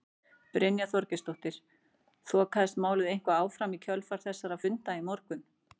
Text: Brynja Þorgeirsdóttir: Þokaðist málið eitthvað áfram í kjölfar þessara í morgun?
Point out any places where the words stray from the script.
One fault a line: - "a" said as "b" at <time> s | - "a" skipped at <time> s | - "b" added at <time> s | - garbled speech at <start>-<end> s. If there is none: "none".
- "funda" added at 4.6 s